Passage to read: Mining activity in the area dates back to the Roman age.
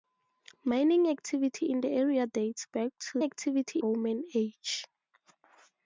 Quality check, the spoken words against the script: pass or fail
fail